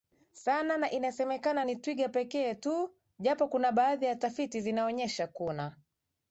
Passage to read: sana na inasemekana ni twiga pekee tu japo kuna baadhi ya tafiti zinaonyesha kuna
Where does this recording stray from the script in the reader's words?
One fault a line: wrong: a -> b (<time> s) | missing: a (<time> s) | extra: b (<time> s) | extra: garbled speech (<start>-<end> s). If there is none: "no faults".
no faults